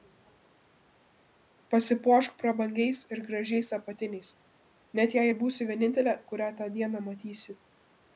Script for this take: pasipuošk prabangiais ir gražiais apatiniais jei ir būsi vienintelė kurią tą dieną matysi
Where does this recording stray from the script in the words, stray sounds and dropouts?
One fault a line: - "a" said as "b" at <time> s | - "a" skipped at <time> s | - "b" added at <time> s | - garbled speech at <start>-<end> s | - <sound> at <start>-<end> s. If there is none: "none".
- "net" added at 5.0 s